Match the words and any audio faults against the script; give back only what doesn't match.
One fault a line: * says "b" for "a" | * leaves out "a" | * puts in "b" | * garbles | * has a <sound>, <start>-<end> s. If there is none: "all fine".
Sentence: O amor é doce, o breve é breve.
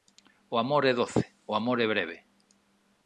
* says "amor" for "breve"